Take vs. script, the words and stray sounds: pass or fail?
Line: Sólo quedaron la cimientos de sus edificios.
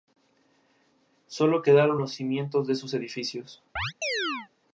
fail